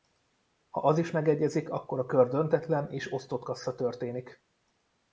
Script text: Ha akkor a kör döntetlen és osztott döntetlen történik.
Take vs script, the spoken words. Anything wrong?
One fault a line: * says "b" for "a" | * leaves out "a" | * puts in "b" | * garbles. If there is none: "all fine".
* puts in "az is megegyezik"
* says "kassza" for "döntetlen"